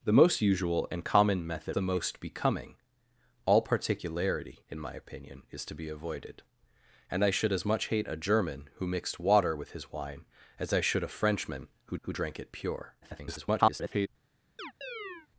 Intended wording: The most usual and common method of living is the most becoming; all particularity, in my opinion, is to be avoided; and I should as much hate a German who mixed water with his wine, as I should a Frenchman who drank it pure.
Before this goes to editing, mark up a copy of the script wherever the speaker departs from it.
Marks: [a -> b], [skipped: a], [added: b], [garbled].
The most usual and common method [skipped: of living is] the most becoming; all particularity, in my opinion, is to be avoided; and I should as much hate a German who mixed water with his wine, as I should a Frenchman who [added: who] drank it pure. [garbled]